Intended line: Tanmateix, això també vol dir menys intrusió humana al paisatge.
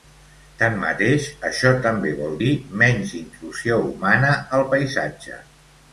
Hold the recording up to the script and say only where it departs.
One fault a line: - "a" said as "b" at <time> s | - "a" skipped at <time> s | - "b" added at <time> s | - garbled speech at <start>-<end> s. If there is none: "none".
none